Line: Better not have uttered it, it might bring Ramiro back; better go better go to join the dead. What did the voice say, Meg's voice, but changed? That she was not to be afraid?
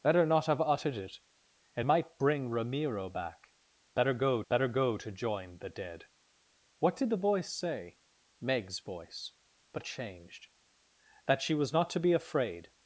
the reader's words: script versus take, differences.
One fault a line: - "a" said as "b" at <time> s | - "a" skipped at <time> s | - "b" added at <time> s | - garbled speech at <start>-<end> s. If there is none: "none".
none